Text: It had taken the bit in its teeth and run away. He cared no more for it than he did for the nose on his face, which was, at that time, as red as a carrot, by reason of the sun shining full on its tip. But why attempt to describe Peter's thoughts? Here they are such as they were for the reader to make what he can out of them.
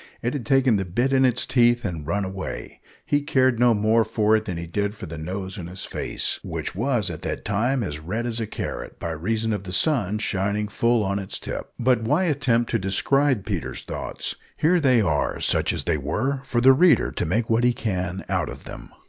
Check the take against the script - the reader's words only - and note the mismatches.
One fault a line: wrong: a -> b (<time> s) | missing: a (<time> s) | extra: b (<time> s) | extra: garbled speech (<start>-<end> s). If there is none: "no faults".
no faults